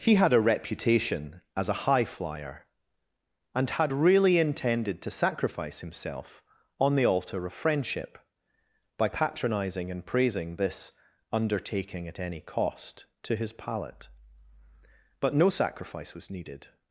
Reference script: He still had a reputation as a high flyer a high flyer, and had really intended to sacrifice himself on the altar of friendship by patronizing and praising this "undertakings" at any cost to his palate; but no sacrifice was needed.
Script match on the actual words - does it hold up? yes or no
no